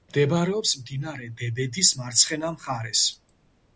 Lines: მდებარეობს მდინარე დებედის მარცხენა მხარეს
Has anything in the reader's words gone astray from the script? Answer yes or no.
no